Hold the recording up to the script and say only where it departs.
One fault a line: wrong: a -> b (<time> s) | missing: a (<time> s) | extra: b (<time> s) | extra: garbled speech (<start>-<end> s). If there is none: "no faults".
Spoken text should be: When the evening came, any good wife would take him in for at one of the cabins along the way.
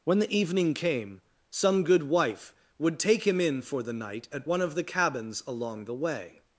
wrong: any -> some (1.5 s)
extra: the night (3.8 s)